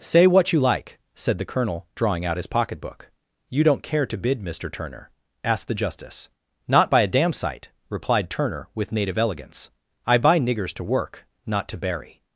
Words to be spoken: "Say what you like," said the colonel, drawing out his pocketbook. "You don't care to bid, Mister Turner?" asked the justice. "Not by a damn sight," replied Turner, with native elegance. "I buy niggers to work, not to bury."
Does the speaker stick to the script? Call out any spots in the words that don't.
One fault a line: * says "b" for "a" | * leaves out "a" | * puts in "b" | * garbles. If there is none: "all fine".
all fine